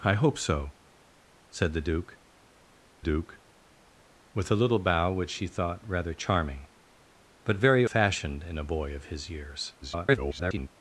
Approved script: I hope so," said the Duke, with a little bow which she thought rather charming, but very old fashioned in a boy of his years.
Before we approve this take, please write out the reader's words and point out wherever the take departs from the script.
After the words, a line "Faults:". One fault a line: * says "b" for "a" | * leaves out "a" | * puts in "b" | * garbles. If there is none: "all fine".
I hope so," said the Duke Duke, with a little bow which she thought rather charming, but very fashioned in a boy of his years. [garbled]
Faults:
* puts in "Duke"
* leaves out "old"
* garbles